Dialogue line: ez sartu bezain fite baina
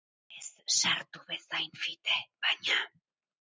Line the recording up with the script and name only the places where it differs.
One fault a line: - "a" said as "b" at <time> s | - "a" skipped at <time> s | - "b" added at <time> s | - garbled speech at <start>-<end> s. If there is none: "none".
none